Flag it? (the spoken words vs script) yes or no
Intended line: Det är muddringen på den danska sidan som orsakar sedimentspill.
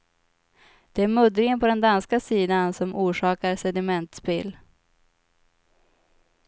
no